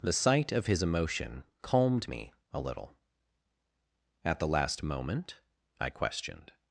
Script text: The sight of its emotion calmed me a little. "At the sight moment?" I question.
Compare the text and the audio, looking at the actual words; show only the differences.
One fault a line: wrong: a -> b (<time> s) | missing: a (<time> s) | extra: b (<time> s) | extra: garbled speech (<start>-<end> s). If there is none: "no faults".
wrong: its -> his (0.7 s)
wrong: sight -> last (4.5 s)
wrong: question -> questioned (5.9 s)